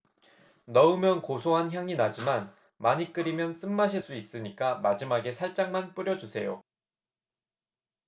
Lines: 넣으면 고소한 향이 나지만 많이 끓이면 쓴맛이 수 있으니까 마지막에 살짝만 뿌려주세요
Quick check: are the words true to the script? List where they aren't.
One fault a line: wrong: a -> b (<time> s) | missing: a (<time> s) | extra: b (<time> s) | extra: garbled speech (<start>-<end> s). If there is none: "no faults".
no faults